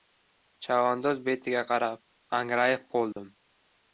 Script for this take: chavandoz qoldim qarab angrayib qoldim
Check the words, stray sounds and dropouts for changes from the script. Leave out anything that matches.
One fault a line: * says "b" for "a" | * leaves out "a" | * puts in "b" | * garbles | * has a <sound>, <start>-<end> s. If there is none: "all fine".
* says "betiga" for "qoldim"
* has a dropout, 3.1-3.2 s